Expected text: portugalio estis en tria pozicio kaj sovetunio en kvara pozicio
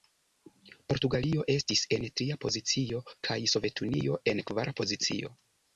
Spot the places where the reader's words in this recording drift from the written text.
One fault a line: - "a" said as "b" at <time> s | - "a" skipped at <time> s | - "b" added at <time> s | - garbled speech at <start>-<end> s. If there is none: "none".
none